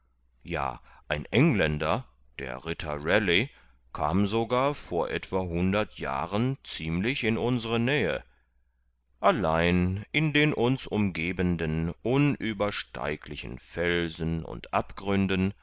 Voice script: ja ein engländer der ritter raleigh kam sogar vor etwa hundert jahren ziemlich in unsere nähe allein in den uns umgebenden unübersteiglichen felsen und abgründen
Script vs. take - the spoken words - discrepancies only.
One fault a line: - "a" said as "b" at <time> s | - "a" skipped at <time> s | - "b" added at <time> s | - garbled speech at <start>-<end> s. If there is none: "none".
none